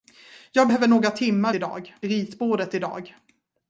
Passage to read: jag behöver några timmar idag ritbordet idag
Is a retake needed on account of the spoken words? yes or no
no